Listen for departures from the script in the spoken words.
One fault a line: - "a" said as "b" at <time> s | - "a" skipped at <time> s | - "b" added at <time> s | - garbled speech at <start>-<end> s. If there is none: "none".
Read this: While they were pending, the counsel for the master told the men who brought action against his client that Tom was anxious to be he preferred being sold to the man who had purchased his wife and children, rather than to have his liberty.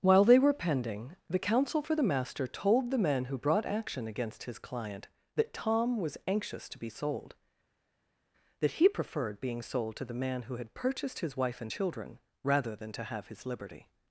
- "sold that" added at 6.9 s